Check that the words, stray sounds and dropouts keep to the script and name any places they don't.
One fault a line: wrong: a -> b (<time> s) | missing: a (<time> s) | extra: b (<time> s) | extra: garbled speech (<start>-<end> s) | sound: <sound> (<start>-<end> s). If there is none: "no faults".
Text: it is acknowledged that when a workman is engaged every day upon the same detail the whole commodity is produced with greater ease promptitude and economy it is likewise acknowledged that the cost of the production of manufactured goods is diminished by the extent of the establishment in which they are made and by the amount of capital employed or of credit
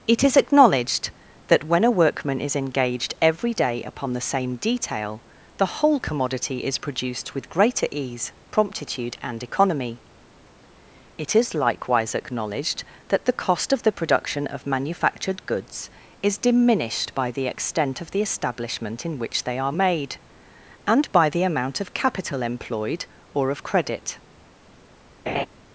sound: laugh (25.3-25.5 s)